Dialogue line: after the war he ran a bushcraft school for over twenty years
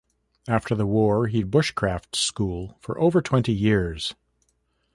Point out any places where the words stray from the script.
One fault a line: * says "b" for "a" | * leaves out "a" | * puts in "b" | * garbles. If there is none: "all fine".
* leaves out "ran"